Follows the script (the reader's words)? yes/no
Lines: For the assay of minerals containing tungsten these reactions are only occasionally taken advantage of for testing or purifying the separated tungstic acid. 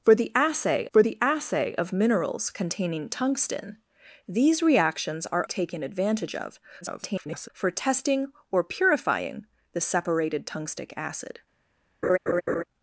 no